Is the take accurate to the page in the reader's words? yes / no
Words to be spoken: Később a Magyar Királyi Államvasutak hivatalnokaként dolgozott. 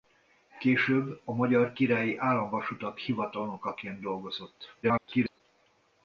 no